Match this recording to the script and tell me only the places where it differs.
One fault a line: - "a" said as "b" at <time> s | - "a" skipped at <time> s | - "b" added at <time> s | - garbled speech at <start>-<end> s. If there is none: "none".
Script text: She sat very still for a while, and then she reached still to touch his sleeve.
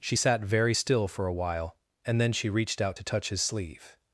- "still" said as "out" at 2.8 s